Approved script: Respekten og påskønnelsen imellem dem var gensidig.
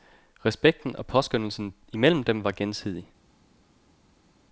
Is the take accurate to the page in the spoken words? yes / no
yes